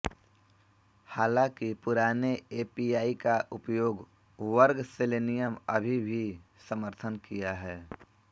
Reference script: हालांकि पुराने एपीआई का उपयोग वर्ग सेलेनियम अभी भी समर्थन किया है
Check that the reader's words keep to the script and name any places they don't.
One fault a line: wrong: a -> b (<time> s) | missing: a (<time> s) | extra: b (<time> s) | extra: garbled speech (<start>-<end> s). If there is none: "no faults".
no faults